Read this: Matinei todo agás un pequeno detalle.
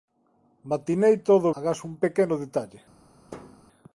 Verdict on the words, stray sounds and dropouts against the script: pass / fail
fail